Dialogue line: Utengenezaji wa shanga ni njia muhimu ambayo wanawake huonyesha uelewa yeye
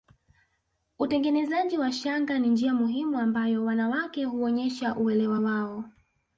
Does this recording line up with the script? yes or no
no